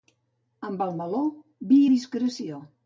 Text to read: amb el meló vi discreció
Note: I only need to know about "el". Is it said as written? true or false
true